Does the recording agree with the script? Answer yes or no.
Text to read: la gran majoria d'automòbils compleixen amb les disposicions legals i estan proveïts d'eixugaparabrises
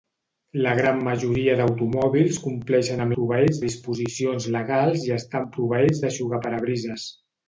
no